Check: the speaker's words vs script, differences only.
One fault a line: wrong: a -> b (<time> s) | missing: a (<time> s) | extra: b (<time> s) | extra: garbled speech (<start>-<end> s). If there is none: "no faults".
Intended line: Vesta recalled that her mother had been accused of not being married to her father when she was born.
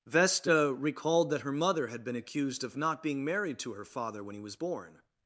wrong: she -> he (4.4 s)